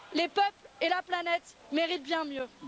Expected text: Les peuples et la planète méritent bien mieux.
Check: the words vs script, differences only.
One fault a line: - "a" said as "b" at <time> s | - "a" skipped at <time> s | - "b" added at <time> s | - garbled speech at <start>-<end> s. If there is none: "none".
none